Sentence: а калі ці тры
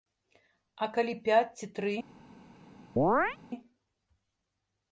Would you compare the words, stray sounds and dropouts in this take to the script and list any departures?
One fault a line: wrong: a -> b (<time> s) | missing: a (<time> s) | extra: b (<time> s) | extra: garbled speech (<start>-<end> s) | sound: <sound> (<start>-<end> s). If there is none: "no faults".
extra: пяць (1.3 s)
sound: chirp (3.0-3.4 s)